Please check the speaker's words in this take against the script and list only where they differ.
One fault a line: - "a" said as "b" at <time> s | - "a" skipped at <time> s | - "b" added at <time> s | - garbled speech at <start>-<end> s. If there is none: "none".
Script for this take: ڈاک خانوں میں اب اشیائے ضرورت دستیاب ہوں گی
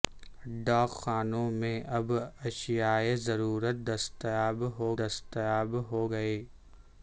- "دستیاب ہوں" added at 5.0 s